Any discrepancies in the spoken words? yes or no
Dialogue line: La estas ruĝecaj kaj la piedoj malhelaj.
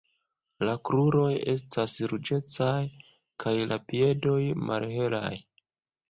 yes